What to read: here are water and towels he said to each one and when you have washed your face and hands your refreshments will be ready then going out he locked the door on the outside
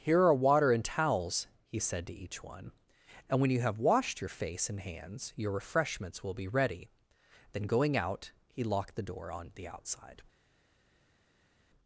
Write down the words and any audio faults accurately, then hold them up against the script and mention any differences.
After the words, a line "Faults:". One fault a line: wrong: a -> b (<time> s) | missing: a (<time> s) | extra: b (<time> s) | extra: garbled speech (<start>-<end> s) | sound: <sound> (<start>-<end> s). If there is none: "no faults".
here are water and towels he said to each one and when you have washed your face and hands your refreshments will be ready then going out he locked the door on the outside
Faults:
no faults